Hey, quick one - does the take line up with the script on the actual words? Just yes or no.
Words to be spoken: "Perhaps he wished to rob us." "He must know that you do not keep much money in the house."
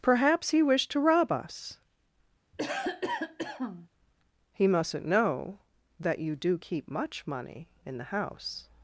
no